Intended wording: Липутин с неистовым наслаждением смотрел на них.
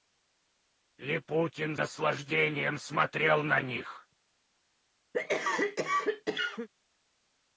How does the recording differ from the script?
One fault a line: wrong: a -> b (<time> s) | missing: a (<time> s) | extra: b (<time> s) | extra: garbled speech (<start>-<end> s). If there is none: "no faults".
missing: с неистовым (1.8 s)